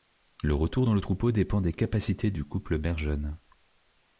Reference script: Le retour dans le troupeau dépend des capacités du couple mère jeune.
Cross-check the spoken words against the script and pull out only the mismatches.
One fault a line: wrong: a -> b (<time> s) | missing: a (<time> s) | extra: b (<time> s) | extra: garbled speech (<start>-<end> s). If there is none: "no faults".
no faults